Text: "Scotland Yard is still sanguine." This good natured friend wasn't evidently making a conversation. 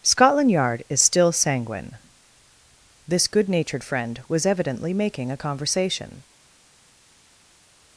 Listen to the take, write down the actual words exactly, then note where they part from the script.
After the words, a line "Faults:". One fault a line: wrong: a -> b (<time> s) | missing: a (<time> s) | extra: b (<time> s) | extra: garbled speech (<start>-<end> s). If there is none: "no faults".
"Scotland Yard is still sanguine." This good natured friend was evidently making a conversation.
Faults:
wrong: wasn't -> was (4.3 s)